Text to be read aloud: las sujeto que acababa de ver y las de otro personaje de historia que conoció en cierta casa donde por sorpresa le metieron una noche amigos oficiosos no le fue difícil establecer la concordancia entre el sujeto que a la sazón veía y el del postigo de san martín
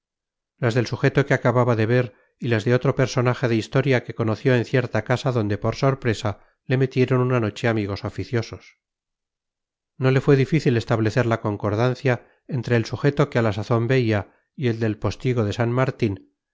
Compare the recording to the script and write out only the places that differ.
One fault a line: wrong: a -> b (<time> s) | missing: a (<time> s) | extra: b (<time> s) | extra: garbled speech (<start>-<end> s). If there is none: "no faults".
extra: del (0.7 s)